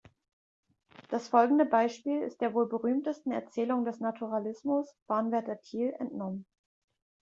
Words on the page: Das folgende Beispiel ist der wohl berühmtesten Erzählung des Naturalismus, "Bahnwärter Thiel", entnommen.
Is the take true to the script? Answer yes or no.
yes